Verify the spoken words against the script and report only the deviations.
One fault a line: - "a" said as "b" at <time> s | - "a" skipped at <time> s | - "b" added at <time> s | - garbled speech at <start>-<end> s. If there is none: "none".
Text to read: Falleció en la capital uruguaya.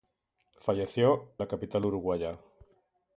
- "en" skipped at 1.4 s